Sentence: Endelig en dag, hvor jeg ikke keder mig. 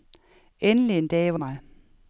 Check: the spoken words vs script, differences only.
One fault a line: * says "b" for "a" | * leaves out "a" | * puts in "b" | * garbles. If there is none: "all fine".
* leaves out "jeg ikke keder"